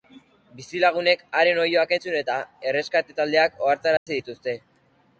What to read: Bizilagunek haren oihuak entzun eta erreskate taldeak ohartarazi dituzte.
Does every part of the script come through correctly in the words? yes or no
yes